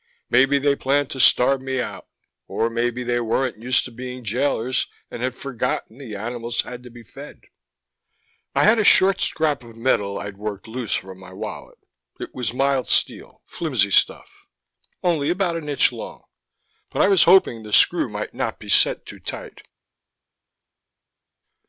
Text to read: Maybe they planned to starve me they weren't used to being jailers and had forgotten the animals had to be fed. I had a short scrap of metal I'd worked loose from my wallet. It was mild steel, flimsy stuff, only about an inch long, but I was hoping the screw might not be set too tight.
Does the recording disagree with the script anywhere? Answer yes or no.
yes